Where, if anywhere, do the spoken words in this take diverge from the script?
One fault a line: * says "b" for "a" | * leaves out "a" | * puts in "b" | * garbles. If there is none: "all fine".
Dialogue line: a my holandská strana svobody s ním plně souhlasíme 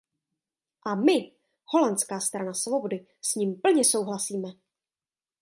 all fine